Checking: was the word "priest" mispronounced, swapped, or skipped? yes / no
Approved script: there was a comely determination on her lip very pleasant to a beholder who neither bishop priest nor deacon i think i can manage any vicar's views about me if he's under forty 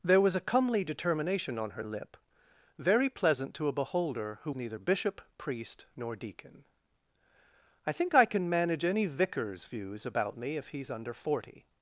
no